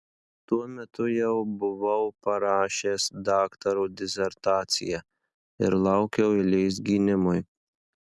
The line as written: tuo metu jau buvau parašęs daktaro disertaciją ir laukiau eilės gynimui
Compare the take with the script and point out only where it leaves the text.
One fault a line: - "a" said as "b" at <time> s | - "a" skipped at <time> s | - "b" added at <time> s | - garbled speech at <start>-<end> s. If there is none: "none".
none